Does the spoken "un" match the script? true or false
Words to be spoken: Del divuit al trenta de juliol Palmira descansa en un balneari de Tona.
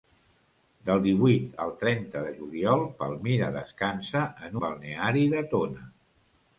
false